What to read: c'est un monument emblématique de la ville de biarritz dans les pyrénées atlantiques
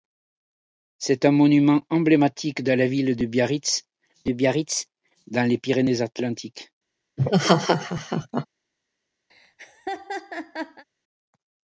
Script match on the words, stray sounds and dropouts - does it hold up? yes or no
no